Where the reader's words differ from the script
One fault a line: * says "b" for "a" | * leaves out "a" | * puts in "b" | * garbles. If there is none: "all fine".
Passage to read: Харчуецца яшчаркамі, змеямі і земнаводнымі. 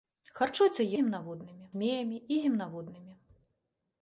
* says "земнаводнымі" for "яшчаркамі"